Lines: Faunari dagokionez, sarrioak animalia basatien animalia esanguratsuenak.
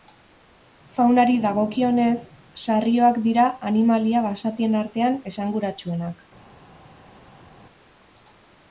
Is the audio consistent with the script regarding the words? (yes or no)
no